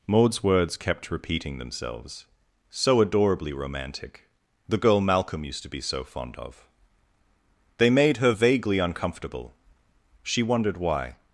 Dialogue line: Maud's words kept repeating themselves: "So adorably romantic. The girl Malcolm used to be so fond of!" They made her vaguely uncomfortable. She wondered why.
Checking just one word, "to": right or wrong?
right